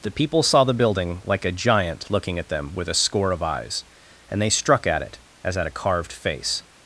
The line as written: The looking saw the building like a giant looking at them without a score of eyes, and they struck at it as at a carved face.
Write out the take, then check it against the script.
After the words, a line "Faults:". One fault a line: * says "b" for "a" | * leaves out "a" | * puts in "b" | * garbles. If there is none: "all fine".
The people saw the building like a giant looking at them with a score of eyes, and they struck at it as at a carved face.
Faults:
* says "people" for "looking"
* says "with" for "without"